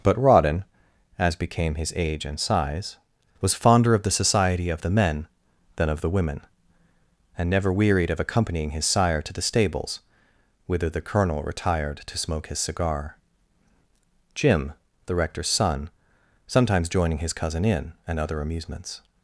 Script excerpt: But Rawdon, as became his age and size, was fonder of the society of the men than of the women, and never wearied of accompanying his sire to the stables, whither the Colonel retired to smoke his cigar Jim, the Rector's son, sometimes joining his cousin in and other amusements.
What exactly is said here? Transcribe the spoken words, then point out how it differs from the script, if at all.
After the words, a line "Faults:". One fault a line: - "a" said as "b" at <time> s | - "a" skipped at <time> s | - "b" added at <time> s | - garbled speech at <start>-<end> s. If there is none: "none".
But Rawdon, as became his age and size, was fonder of the society of the men than of the women, and never wearied of accompanying his sire to the stables, whither the Colonel retired to smoke his cigar Jim, the Rector's son, sometimes joining his cousin in and other amusements.
Faults:
none